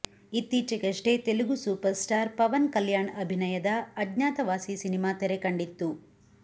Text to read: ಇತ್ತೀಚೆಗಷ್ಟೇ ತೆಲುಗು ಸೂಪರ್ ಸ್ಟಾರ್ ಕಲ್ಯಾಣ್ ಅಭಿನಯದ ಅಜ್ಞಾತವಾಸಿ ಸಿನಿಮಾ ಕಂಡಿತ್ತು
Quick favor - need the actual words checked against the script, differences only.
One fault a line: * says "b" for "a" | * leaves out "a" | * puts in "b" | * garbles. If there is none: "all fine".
* puts in "ಪವನ್"
* puts in "ತೆರೆ"